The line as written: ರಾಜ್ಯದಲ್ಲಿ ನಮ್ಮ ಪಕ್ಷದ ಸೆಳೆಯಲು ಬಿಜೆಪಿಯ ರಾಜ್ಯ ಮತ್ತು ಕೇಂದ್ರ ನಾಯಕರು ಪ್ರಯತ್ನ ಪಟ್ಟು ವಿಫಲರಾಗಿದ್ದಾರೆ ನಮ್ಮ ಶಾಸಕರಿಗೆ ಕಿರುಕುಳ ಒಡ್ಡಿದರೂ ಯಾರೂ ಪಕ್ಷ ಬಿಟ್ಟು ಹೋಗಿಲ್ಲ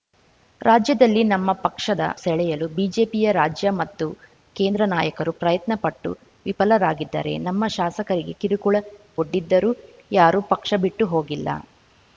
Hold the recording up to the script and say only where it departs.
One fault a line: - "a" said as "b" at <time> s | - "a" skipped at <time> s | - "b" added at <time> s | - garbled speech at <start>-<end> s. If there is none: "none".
none